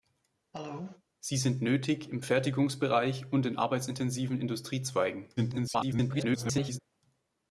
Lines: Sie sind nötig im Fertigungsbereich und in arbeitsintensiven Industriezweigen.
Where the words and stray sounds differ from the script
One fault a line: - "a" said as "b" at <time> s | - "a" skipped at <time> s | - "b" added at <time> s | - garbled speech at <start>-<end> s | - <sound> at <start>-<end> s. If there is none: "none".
- cough at 0.5-1.0 s
- garbled speech at 5.4-6.8 s